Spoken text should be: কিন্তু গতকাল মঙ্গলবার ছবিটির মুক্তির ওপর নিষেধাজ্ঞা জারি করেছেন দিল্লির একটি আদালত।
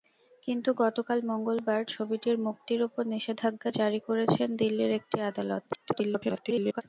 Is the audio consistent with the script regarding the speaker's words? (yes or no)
no